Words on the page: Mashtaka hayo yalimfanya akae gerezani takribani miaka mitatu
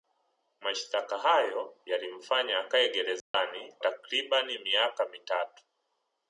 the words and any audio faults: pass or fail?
fail